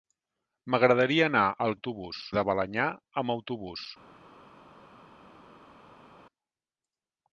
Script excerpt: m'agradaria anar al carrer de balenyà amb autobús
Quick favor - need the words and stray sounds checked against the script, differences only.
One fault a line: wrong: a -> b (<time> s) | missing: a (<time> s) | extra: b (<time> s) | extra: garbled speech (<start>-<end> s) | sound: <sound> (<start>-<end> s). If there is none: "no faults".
wrong: carrer -> autobús (1.7 s)